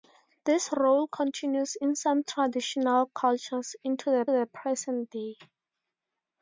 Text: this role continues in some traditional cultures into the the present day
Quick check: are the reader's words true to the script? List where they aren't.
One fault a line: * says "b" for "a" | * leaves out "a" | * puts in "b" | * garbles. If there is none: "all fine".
all fine